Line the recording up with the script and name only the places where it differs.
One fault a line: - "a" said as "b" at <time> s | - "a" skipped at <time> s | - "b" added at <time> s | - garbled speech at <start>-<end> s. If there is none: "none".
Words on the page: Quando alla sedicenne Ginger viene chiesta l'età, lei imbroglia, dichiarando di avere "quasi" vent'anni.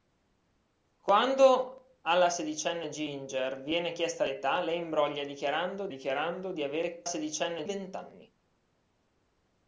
- "dichiarando" added at 5.9 s
- "quasi" said as "sedicenne" at 7.0 s